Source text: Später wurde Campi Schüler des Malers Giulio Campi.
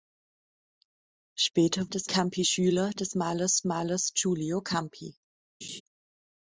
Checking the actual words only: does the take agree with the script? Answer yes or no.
no